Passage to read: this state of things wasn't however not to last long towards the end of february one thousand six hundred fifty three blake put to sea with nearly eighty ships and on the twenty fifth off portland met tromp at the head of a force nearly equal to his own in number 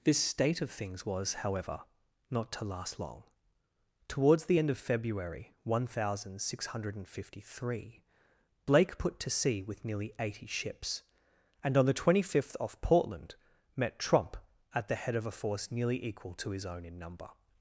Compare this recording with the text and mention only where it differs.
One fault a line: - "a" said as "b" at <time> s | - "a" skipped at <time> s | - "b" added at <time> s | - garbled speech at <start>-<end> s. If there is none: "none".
- "wasn't" said as "was" at 1.1 s